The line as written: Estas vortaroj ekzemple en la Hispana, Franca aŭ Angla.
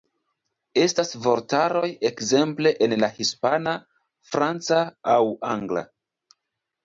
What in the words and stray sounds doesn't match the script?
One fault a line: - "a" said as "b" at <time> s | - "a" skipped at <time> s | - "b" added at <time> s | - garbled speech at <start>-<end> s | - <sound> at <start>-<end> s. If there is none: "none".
none